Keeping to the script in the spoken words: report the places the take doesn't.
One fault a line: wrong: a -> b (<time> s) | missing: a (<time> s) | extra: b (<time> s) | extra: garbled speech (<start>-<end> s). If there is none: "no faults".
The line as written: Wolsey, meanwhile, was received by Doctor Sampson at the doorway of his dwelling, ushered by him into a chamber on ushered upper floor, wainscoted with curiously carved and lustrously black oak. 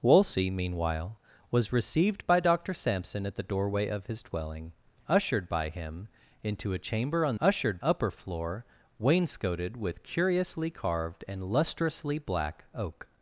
no faults